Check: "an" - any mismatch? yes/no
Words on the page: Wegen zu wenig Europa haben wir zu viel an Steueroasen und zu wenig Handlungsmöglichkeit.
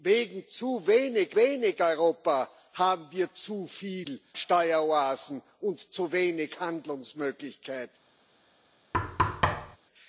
yes